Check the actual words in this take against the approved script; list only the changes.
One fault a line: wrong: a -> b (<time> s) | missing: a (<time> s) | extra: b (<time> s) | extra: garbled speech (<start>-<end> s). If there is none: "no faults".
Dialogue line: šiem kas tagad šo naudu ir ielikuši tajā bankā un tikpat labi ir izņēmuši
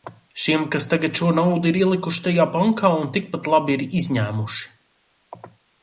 no faults